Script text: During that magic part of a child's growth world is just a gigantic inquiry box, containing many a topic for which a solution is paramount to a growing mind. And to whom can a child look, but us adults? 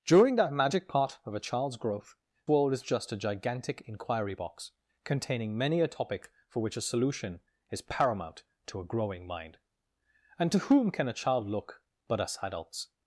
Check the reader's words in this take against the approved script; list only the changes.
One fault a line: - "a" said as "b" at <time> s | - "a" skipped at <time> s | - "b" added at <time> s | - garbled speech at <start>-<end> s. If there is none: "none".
none